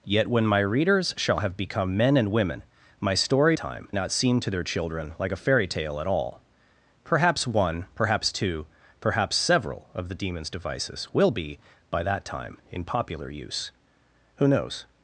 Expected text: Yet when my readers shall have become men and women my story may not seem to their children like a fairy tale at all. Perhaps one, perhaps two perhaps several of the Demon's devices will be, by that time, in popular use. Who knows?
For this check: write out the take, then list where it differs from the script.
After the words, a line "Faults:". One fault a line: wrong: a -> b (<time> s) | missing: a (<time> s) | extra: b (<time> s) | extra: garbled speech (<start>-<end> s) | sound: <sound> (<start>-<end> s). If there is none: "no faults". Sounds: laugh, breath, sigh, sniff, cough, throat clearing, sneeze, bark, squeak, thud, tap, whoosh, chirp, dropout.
Yet when my readers shall have become men and women my story time not seem to their children like a fairy tale at all. Perhaps one, perhaps two perhaps several of the Demon's devices will be, by that time, in popular use. Who knows?
Faults:
wrong: may -> time (3.6 s)